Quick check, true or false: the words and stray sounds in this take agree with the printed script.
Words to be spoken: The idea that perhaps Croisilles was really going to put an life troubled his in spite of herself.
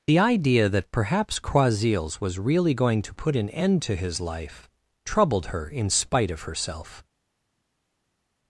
false